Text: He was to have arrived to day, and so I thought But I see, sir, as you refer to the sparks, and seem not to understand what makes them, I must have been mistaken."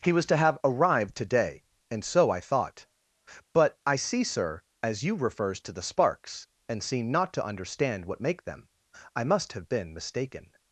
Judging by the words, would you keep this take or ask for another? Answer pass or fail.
fail